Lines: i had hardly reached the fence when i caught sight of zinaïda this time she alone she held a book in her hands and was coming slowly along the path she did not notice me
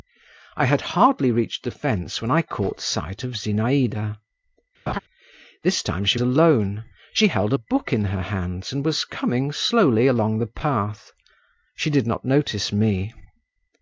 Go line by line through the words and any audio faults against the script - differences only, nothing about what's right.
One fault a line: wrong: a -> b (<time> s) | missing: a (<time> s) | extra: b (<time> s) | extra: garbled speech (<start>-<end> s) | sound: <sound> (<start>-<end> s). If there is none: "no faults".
sound: laugh (4.9-5.0 s)